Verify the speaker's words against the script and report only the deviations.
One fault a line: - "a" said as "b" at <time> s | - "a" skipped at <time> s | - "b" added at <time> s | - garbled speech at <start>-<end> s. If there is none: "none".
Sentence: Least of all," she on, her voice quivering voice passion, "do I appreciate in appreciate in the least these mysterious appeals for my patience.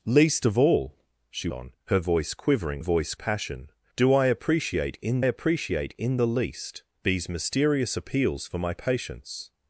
none